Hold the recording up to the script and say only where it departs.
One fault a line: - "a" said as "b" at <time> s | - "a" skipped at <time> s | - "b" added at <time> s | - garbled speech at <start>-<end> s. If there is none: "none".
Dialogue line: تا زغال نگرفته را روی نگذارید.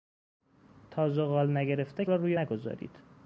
none